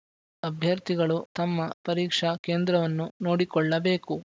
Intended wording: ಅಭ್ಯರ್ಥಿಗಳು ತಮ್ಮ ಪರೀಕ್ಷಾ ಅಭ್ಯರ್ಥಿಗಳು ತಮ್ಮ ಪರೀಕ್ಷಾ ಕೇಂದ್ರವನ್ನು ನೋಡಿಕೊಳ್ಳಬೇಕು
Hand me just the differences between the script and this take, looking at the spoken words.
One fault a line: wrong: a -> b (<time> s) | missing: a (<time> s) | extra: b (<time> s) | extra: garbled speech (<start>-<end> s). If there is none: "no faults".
missing: ಅಭ್ಯರ್ಥಿಗಳು ತಮ್ಮ ಪರೀಕ್ಷಾ (2.4 s)